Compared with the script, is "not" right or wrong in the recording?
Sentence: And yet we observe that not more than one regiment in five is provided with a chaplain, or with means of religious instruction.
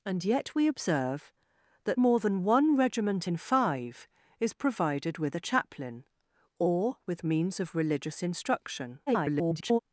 wrong